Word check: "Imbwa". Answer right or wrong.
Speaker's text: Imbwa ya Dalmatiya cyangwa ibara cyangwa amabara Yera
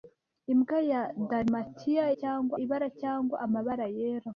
right